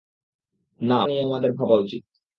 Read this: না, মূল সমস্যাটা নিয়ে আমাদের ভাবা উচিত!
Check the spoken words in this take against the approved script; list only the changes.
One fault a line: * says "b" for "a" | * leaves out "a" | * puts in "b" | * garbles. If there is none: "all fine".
* leaves out "মূল সমস্যাটা"